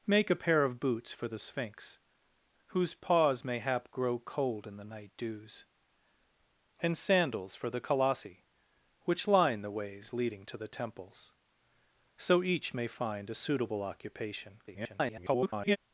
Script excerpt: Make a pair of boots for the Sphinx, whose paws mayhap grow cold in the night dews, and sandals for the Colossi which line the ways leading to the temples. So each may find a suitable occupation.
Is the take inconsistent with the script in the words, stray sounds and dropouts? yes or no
yes